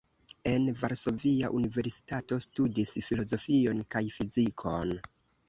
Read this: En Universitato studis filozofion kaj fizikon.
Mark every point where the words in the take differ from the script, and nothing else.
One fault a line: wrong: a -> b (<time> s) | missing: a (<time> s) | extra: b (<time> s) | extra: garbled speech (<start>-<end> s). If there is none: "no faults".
extra: Varsovia (0.8 s)